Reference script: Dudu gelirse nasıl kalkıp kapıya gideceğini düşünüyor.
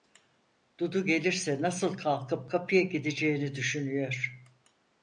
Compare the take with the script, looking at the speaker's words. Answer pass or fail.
pass